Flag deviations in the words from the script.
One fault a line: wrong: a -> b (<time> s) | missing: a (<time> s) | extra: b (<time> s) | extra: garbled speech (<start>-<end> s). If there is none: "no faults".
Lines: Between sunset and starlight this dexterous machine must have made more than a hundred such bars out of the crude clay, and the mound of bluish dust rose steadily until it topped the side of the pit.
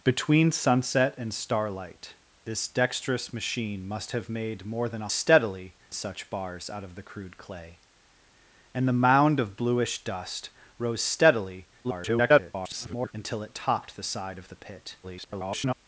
wrong: hundred -> steadily (5.1 s)
extra: garbled speech (11.8-13.1 s)
extra: garbled speech (15.0-15.7 s)